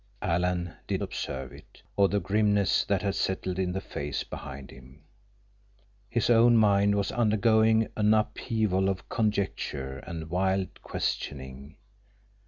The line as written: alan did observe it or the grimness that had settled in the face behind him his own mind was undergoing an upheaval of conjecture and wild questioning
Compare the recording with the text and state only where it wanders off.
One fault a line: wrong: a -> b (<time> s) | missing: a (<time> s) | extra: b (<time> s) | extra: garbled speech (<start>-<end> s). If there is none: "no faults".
no faults